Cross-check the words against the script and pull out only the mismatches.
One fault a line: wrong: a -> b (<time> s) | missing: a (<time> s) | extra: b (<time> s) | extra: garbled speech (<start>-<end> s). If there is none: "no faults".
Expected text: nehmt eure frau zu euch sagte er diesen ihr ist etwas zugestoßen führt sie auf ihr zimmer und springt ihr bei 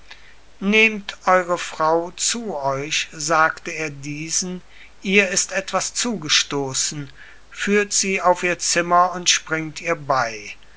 no faults